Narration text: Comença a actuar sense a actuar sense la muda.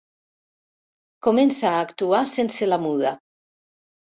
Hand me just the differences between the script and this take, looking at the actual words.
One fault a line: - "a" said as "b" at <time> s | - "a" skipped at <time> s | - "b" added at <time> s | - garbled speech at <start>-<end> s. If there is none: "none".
- "a actuar sense" skipped at 2.7 s